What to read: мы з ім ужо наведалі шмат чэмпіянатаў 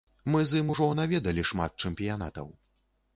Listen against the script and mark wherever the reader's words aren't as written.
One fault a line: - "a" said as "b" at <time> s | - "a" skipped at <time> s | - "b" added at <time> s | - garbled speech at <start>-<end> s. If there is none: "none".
none